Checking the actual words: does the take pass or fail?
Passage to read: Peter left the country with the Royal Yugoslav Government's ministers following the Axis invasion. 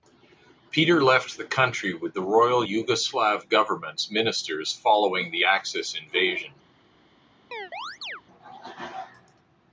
pass